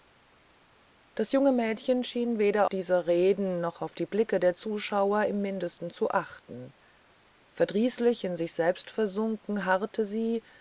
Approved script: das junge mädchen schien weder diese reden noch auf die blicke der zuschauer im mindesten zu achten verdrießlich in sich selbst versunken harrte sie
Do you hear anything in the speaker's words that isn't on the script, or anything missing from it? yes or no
no